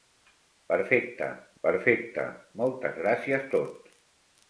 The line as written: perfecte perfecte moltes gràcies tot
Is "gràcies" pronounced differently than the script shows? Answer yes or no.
no